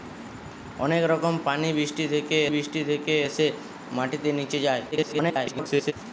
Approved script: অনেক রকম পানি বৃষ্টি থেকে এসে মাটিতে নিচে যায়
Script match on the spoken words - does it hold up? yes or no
no